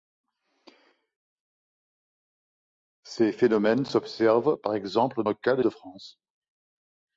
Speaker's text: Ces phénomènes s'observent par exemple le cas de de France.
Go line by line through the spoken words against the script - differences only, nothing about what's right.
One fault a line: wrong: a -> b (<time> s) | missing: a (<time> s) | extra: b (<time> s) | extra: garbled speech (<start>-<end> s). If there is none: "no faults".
no faults